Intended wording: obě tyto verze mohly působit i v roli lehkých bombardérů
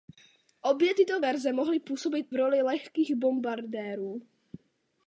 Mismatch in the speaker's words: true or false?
true